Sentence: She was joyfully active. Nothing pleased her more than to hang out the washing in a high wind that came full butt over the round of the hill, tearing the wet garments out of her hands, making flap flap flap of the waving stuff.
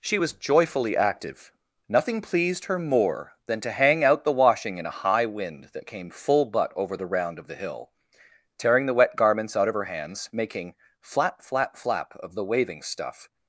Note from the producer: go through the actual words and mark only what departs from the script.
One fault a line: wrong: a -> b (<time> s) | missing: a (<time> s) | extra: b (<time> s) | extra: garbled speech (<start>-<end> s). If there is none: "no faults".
no faults